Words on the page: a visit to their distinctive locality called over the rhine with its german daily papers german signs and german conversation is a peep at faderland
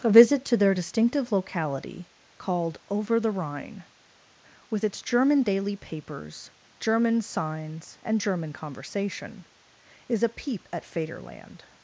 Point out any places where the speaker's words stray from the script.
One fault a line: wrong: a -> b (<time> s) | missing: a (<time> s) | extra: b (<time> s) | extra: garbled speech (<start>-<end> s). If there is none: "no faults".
no faults